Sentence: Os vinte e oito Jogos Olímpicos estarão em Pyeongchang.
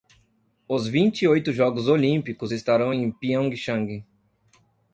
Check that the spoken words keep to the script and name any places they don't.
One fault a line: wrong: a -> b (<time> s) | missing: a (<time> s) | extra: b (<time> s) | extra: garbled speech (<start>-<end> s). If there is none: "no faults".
no faults